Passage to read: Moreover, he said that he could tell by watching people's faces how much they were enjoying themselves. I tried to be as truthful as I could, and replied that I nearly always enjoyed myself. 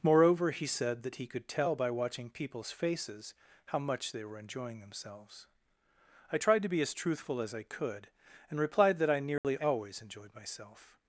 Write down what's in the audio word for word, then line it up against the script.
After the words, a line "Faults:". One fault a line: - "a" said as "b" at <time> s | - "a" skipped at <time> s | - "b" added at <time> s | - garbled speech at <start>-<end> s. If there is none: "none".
Moreover, he said that he could tell by watching people's faces how much they were enjoying themselves. I tried to be as truthful as I could, and replied that I nearly always enjoyed myself.
Faults:
none